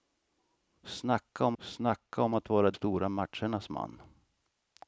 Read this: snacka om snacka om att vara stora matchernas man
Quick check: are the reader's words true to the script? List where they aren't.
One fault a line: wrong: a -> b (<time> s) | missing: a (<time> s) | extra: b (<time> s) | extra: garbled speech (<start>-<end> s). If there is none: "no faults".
no faults